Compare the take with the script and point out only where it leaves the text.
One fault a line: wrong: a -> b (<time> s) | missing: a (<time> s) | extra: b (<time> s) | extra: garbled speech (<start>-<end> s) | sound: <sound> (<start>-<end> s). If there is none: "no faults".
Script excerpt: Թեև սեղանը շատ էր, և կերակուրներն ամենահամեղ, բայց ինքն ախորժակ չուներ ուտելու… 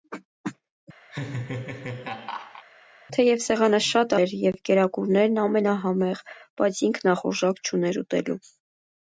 sound: laugh (1.1-2.6 s)